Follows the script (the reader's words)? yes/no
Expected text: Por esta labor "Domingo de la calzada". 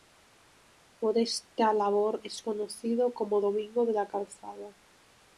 no